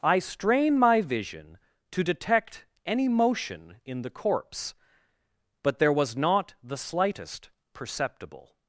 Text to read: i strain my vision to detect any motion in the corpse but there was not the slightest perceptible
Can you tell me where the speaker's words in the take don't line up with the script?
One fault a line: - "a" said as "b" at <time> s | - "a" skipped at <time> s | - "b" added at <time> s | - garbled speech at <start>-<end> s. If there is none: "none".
none